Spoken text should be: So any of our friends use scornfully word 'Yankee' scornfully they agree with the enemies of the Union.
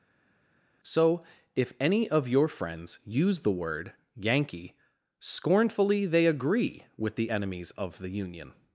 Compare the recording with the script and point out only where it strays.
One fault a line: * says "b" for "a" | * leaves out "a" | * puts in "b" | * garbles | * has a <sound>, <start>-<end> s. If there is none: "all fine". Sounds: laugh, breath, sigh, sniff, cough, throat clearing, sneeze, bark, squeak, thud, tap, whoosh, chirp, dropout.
* puts in "if"
* says "your" for "our"
* says "the" for "scornfully"